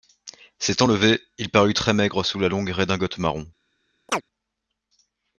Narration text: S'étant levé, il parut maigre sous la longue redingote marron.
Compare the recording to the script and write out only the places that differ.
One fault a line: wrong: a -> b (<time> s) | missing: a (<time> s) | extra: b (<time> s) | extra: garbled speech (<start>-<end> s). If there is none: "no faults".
extra: très (1.7 s)